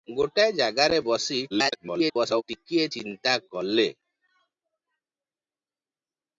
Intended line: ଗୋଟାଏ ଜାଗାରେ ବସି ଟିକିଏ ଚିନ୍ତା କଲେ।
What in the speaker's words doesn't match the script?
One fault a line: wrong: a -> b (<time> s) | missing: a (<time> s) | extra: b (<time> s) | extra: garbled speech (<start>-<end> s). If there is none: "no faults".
extra: garbled speech (1.5-2.4 s)